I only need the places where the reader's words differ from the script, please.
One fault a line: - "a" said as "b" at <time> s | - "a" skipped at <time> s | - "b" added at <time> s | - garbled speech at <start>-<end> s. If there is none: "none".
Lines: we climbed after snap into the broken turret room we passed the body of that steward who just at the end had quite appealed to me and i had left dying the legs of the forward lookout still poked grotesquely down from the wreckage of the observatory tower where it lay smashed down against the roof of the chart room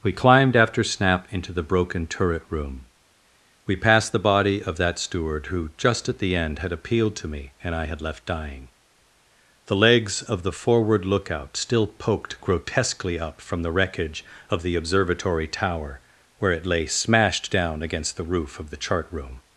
- "quite" skipped at 6.7 s
- "down" said as "up" at 13.2 s